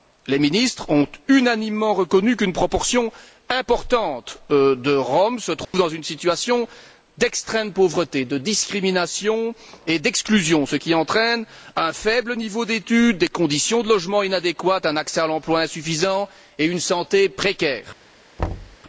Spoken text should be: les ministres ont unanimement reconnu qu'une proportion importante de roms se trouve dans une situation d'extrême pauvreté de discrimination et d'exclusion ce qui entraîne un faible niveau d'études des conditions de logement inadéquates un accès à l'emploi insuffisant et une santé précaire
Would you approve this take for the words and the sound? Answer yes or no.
no